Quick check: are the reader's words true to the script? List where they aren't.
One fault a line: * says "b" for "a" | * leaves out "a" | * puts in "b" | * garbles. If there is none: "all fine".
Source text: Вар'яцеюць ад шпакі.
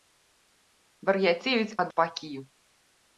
all fine